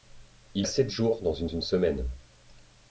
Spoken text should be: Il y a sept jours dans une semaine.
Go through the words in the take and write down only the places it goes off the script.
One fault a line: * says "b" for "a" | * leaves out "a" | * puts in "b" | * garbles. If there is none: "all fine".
* leaves out "y"
* puts in "une"